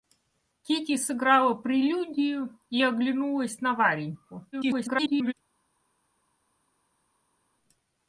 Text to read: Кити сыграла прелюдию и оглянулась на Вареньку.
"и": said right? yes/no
yes